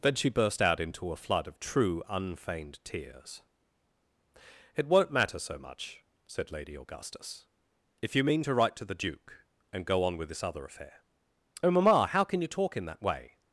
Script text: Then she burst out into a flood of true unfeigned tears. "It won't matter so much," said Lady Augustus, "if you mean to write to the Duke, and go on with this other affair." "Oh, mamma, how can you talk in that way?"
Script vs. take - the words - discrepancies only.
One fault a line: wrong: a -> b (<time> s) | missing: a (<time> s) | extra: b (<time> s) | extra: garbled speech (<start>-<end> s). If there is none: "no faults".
no faults